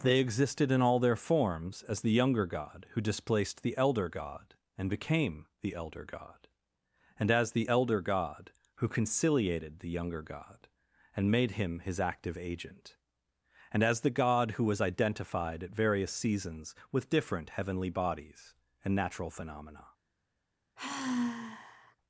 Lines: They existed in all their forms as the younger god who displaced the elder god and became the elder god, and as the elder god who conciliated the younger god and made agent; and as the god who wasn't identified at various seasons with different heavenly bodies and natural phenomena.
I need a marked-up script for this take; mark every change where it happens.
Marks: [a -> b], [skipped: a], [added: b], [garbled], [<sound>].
They existed in all their forms as the younger god who displaced the elder god and became the elder god, and as the elder god who conciliated the younger god and made [added: him his active] agent; and as the god who [wasn't -> was] identified at various seasons with different heavenly bodies and natural phenomena. [sigh]